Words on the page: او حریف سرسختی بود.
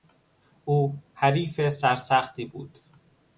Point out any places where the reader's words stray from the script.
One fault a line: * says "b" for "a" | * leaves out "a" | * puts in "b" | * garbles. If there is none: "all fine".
all fine